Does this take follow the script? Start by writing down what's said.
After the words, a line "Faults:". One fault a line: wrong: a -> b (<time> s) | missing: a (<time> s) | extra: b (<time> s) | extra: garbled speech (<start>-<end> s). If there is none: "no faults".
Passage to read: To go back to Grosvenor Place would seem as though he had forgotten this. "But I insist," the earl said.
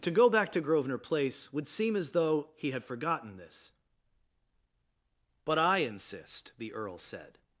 To go back to Grosvenor Place would seem as though he had forgotten this. "But I insist," the earl said.
Faults:
no faults